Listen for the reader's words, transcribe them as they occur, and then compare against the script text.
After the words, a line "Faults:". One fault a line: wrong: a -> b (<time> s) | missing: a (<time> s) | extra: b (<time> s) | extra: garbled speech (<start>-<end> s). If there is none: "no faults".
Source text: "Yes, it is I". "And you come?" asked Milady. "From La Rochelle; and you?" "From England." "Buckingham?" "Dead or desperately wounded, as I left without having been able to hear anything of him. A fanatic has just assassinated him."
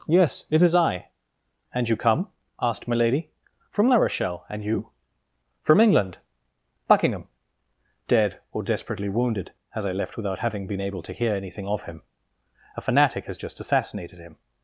"Yes, it is I". "And you come?" asked Milady. "From La Rochelle; and you?" "From England." "Buckingham?" "Dead or desperately wounded, as I left without having been able to hear anything of him. A fanatic has just assassinated him."
Faults:
no faults